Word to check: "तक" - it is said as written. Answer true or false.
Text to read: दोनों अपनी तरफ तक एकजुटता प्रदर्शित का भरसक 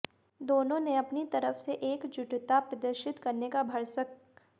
false